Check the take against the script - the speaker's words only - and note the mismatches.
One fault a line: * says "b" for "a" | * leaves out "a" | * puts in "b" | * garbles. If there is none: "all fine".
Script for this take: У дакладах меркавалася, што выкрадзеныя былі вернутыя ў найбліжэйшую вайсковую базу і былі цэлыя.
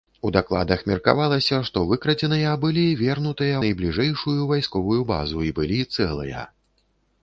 * leaves out "ў"